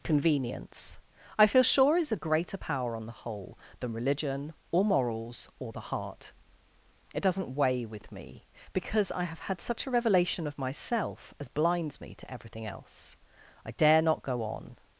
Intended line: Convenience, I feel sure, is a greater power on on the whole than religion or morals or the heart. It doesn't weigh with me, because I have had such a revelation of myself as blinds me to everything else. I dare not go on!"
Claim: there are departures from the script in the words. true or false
true